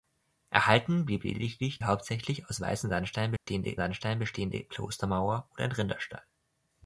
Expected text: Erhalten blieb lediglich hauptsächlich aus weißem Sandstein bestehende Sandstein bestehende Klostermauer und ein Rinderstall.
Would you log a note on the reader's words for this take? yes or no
no